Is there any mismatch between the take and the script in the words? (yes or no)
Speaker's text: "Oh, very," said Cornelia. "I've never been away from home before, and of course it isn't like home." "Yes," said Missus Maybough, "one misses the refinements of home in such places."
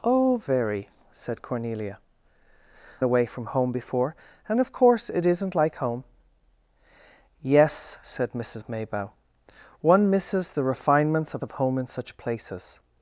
yes